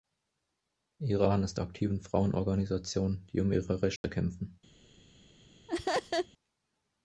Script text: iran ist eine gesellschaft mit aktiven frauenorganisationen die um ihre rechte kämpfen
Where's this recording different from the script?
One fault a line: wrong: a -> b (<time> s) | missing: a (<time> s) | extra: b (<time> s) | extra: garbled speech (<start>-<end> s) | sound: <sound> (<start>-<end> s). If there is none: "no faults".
missing: eine gesellschaft mit (1.6 s)
sound: dropout (4.0-4.0 s)
sound: laugh (5.7-6.3 s)